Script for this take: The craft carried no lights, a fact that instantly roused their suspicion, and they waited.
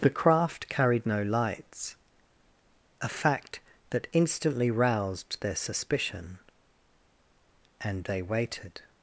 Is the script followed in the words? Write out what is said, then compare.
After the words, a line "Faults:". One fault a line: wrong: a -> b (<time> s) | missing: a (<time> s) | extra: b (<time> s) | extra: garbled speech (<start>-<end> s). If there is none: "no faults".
The craft carried no lights, a fact that instantly roused their suspicion, and they waited.
Faults:
no faults